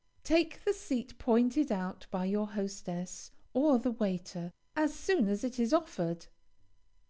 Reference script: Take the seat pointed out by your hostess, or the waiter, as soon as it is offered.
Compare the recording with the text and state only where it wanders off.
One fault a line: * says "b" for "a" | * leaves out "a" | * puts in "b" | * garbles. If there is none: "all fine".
all fine